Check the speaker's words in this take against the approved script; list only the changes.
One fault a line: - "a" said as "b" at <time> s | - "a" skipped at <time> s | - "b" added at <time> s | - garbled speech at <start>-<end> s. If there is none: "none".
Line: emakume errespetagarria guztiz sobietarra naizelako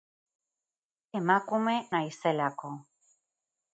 - "errespetagarria guztiz sobietarra" skipped at 1.8 s